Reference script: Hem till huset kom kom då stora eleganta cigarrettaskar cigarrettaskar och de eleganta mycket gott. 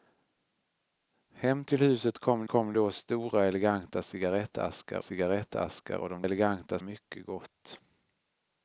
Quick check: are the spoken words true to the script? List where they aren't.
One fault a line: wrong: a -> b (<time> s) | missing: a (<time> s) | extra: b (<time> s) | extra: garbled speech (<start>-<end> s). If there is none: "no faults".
no faults